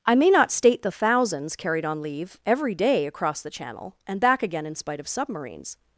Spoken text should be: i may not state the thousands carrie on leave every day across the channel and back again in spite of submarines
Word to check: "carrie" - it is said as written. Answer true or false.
false